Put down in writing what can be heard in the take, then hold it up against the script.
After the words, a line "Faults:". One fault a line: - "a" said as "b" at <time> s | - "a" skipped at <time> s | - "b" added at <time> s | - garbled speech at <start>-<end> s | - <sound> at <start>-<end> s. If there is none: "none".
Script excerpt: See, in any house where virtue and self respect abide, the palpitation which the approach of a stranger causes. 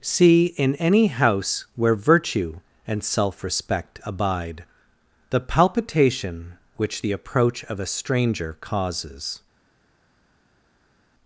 See, in any house where virtue and self respect abide, the palpitation which the approach of a stranger causes.
Faults:
none